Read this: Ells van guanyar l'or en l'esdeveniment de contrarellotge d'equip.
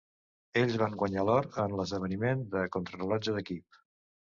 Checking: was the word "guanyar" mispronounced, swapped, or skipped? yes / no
no